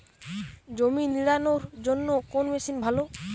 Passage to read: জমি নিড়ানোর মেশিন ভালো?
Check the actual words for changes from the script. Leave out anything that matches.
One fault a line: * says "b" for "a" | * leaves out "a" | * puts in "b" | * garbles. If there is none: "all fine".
* puts in "জন্য কোন"